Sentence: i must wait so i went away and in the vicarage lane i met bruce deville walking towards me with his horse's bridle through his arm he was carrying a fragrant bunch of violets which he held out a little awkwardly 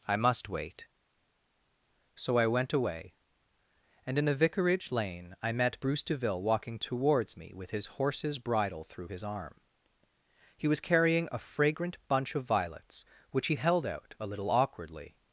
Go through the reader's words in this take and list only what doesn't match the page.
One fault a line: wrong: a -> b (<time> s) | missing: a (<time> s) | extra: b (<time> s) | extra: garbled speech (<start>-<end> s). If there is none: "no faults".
wrong: the -> a (4.3 s)